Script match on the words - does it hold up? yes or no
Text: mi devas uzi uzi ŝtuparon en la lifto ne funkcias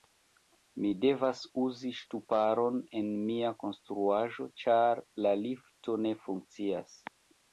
no